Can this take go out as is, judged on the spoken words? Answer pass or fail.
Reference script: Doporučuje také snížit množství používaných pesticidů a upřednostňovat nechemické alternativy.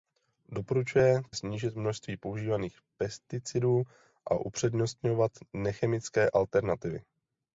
fail